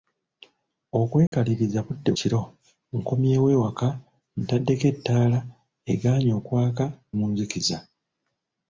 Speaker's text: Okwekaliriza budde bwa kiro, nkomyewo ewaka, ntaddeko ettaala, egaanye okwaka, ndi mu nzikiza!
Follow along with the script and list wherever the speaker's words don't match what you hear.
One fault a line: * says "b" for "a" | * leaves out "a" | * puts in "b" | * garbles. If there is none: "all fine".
* leaves out "bwa"
* leaves out "ndi"